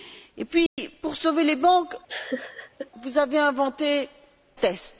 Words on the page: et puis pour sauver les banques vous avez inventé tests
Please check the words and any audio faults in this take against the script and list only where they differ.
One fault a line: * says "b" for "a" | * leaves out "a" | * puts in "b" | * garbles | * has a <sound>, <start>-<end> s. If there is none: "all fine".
* has a dropout, 0.7-0.8 s
* has a laugh, 2.1-2.9 s